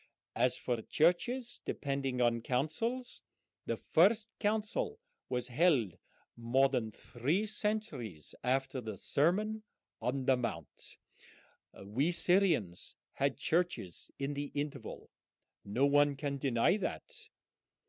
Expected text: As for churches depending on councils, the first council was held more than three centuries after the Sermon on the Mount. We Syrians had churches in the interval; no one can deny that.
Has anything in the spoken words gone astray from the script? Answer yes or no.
no